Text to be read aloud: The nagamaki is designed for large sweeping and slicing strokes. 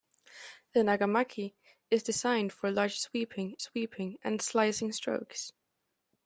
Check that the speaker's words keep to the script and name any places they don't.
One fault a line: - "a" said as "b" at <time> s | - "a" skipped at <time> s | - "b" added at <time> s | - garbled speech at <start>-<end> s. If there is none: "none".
- "sweeping" added at 3.6 s